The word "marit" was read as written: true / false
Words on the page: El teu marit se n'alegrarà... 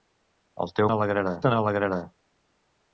false